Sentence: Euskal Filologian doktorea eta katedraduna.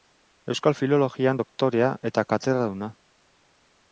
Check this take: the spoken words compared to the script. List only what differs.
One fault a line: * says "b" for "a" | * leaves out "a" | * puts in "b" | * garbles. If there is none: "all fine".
all fine